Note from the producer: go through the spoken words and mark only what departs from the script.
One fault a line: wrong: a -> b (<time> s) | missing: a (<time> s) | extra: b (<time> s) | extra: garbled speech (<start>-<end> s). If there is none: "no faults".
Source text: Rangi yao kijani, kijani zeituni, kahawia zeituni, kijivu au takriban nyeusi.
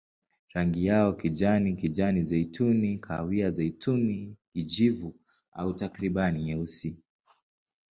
no faults